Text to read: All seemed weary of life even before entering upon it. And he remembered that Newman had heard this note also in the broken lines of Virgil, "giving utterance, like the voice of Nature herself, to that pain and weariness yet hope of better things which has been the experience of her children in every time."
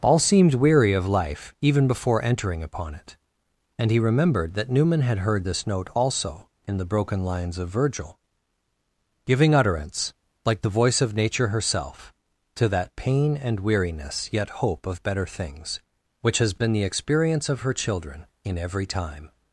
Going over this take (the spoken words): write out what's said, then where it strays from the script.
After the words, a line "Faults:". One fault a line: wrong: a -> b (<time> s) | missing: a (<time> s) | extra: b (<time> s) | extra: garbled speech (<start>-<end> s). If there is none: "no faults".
All seemed weary of life even before entering upon it. And he remembered that Newman had heard this note also in the broken lines of Virgil, "giving utterance, like the voice of Nature herself, to that pain and weariness yet hope of better things which has been the experience of her children in every time."
Faults:
no faults